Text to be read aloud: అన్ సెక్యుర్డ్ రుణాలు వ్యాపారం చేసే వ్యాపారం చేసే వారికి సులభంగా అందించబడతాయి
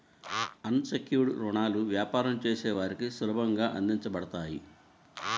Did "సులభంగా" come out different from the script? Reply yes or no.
no